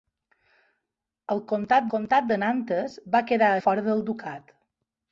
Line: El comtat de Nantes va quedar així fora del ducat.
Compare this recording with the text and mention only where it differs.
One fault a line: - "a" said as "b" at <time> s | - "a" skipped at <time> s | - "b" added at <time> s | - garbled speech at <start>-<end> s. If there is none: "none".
- "comtat" added at 1.9 s
- "així" skipped at 3.5 s